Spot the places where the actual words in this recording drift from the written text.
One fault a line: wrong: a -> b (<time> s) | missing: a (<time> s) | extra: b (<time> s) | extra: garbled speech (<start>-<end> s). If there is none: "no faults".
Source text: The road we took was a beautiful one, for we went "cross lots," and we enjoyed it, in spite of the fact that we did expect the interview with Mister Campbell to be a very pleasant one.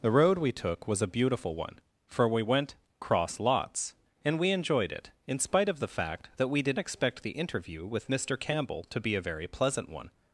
no faults